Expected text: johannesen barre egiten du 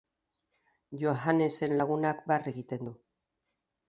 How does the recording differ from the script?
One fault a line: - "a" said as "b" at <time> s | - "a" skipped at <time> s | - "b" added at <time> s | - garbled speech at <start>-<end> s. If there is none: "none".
- "lagunak" added at 1.8 s